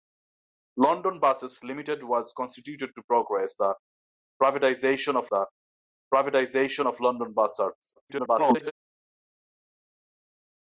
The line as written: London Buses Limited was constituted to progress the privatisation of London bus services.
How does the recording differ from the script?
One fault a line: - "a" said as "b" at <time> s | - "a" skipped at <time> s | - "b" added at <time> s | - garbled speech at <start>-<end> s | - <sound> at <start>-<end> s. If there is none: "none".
- "the privatisation of" added at 5.3 s
- garbled speech at 8.0-8.7 s